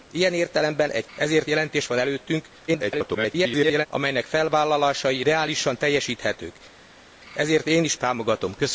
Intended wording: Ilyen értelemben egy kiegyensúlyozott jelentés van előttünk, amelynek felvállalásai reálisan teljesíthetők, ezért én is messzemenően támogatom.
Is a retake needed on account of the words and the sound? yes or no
yes